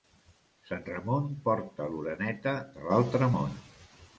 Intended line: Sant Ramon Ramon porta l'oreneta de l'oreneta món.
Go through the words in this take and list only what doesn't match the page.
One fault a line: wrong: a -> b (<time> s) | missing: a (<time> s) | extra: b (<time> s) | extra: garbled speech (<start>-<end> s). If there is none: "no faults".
missing: Ramon (1.3 s)
wrong: l'oreneta -> l'altre (2.9 s)